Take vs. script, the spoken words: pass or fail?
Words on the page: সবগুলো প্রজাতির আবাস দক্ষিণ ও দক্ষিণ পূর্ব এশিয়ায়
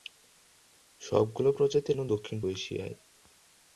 fail